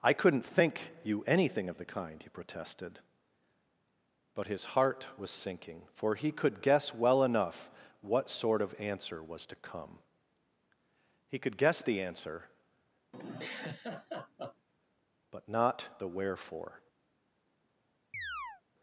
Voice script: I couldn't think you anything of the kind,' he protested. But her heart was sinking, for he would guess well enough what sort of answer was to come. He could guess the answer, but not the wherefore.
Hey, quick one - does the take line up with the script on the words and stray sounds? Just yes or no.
no